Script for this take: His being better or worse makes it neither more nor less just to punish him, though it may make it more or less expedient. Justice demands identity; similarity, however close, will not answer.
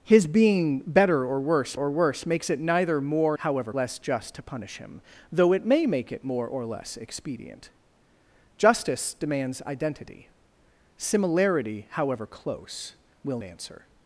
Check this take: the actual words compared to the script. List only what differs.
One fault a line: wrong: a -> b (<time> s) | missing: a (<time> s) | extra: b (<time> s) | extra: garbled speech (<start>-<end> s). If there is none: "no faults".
extra: or worse (1.7 s)
wrong: nor -> however (3.4 s)
missing: not (13.4 s)